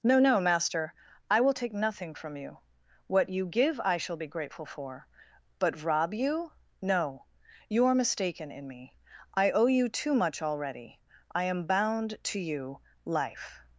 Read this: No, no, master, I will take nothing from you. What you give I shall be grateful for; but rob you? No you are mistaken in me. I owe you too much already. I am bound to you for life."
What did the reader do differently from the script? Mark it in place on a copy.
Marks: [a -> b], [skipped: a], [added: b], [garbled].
No, no, master, I will take nothing from you. What you give I shall be grateful for; but rob you? No you are mistaken in me. I owe you too much already. I am bound to you [skipped: for] life."